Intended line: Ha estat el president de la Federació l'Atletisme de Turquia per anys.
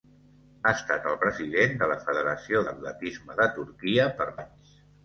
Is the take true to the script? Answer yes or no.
yes